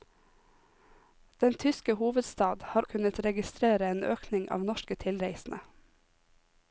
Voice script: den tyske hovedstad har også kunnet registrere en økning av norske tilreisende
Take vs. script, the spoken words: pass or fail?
fail